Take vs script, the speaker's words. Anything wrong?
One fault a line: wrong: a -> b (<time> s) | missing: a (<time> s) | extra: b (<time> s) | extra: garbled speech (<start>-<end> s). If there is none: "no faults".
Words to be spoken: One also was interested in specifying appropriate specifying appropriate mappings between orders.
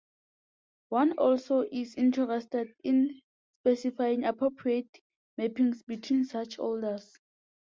wrong: was -> is (1.7 s)
missing: specifying appropriate (5.0 s)
extra: such (6.2 s)